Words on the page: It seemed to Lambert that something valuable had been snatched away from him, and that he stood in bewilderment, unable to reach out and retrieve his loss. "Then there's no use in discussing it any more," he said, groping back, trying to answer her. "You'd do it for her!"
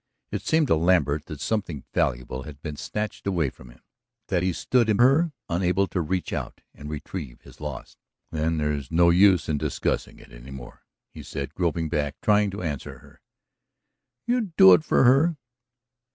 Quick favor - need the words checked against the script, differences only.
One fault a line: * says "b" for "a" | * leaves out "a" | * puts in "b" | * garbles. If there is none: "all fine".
* leaves out "and"
* says "her" for "bewilderment"